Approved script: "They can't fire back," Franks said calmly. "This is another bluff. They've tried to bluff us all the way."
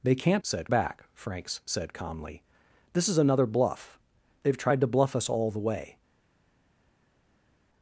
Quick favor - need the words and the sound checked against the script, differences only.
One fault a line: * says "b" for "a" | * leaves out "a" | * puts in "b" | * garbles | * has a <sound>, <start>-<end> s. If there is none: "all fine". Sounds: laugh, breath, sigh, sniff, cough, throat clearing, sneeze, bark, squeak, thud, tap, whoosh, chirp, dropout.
* says "said" for "fire"